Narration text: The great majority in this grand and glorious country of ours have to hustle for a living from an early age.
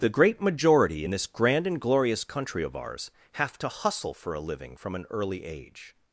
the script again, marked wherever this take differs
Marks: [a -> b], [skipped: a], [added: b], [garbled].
The great majority in this grand and glorious country of ours have to hustle for a living from an early age.